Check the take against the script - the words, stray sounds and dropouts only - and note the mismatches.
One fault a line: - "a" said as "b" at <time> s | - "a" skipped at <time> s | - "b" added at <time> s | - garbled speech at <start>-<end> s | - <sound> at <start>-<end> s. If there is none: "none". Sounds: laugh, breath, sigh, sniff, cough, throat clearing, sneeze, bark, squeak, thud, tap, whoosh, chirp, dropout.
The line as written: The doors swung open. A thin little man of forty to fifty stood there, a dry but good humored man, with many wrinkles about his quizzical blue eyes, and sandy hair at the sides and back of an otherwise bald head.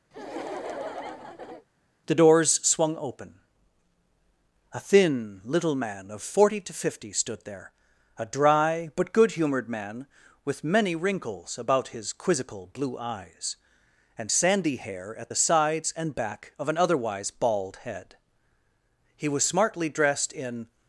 - laugh at 0.1-1.7 s
- "He was smartly dressed in" added at 19.2 s